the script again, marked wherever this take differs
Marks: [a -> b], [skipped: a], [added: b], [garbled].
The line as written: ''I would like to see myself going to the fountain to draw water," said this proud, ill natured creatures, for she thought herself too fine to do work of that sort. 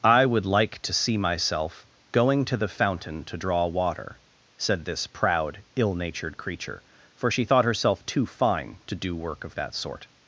''I would like to see myself going to the fountain to draw water," said this proud, ill natured [creatures, -> creature] for she thought herself too fine to do work of that sort.